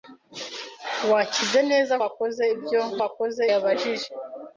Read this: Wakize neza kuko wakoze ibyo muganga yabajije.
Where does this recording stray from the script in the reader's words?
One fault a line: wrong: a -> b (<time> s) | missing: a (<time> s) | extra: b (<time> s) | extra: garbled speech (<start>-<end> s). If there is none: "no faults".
missing: kuko (1.9 s)
wrong: muganga -> wakoze (3.0 s)